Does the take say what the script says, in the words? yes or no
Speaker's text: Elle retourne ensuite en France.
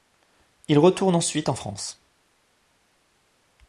no